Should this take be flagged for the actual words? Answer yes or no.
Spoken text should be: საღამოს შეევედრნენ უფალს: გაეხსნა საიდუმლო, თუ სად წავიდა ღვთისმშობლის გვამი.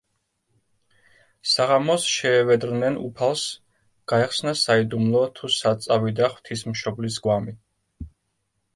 no